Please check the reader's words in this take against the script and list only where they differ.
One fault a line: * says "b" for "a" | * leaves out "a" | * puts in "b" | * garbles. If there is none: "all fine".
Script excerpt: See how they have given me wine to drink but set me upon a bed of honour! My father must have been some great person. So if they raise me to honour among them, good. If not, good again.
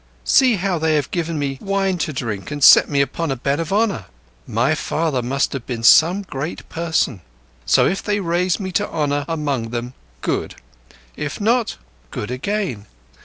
* says "and" for "but"